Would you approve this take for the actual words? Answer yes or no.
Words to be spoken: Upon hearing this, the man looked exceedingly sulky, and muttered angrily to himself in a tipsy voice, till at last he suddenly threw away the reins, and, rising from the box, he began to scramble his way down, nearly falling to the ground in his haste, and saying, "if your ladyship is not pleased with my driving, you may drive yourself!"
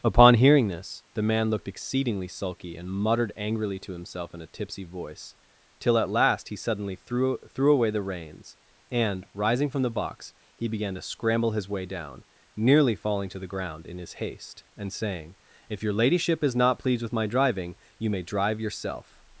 no